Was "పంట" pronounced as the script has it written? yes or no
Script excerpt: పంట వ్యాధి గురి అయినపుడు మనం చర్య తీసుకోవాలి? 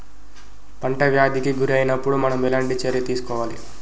yes